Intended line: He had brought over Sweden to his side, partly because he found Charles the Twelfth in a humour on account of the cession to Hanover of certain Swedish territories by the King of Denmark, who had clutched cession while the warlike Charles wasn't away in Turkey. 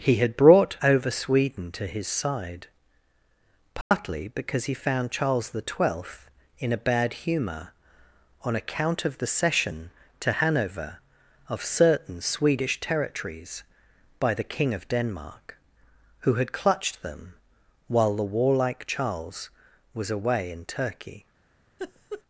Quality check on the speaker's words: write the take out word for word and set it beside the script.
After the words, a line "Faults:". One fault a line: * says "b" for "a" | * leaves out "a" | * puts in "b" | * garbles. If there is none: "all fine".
He had brought over Sweden to his side, partly because he found Charles the Twelfth in a bad humour on account of the cession to Hanover of certain Swedish territories by the King of Denmark, who had clutched them while the warlike Charles was away in Turkey.
Faults:
* puts in "bad"
* says "them" for "cession"
* says "was" for "wasn't"